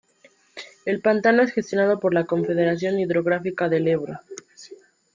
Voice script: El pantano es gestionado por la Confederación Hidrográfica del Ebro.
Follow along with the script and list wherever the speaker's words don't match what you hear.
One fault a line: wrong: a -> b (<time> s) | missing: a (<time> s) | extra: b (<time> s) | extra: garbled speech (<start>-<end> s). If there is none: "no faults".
no faults